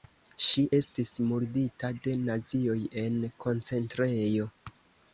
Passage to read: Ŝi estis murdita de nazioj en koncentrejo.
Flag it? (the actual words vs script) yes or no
no